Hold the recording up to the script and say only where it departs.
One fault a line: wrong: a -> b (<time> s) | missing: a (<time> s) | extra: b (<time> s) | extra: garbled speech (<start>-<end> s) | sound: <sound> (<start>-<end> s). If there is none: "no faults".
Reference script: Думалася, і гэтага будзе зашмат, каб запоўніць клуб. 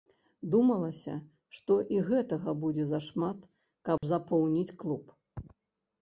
extra: што (1.6 s)
sound: dropout (4.0-4.0 s)